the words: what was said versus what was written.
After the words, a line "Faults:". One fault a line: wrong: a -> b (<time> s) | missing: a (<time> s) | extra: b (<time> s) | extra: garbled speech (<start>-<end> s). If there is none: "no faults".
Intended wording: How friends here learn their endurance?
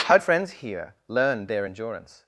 How friends here learn their endurance?
Faults:
no faults